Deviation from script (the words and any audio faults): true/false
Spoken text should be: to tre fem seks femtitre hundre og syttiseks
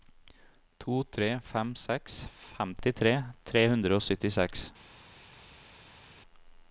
true